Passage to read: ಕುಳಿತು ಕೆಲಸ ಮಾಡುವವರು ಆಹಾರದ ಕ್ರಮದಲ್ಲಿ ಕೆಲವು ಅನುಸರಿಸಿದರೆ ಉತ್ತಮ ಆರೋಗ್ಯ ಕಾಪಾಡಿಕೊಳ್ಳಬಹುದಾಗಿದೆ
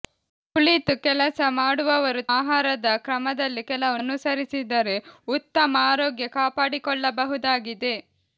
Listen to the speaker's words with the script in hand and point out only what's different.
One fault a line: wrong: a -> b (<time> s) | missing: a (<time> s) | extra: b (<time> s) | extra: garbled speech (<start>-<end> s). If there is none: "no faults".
no faults